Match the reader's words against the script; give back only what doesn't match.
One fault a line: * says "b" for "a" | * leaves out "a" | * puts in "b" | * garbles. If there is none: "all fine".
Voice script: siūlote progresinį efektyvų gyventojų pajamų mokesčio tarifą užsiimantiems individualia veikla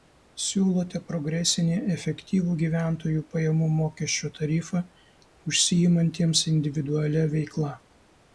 all fine